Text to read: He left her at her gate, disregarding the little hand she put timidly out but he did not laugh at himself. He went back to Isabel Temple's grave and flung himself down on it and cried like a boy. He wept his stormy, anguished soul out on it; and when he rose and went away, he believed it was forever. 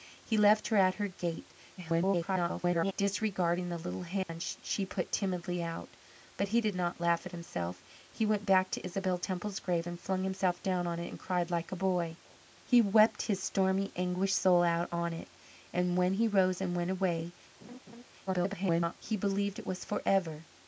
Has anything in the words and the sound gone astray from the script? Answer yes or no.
yes